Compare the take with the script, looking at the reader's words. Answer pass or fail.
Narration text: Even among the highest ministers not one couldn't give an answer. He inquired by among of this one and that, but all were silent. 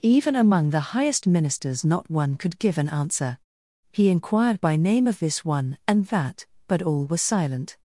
fail